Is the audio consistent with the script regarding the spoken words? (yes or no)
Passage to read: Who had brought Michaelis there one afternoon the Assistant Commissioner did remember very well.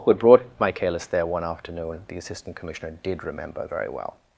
yes